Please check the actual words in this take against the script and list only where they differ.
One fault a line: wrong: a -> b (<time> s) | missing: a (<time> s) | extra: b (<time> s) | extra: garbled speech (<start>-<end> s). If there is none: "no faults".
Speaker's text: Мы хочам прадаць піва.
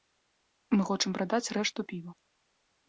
extra: рэшту (1.6 s)